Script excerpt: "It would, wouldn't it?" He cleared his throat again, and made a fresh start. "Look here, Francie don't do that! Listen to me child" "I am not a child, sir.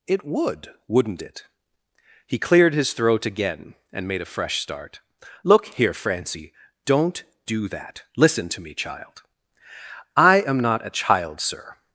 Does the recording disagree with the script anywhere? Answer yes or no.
no